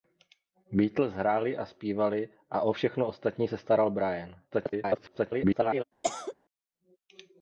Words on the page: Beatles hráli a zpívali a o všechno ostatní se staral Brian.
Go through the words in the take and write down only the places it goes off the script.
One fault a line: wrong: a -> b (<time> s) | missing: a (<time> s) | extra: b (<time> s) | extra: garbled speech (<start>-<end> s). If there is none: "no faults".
extra: garbled speech (4.5-5.8 s)